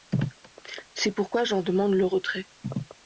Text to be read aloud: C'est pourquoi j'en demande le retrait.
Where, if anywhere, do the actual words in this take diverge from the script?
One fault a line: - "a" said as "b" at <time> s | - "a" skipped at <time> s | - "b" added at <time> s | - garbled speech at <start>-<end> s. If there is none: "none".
none